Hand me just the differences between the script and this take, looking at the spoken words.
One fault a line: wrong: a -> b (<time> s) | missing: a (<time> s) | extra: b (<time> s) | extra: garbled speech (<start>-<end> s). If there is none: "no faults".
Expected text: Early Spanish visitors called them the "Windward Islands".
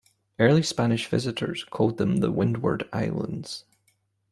no faults